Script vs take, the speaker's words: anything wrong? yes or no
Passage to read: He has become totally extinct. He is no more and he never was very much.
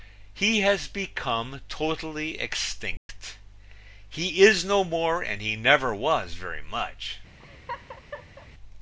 no